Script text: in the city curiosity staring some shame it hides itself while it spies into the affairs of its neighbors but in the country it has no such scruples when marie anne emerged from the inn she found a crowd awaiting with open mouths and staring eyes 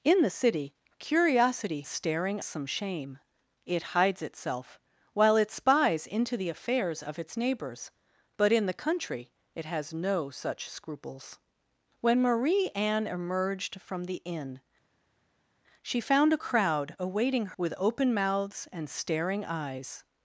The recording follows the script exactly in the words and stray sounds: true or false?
true